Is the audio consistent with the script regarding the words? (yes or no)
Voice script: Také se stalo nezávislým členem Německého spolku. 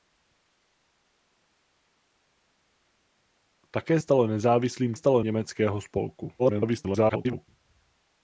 no